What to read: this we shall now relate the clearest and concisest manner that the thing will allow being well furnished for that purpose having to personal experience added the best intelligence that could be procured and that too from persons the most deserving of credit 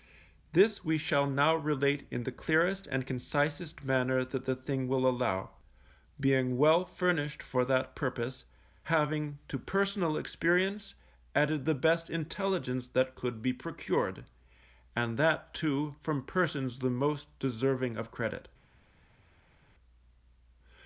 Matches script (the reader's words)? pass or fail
fail